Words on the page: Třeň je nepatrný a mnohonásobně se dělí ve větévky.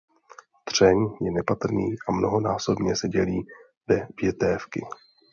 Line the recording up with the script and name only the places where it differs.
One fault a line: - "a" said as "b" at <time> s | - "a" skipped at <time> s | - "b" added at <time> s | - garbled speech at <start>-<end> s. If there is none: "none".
none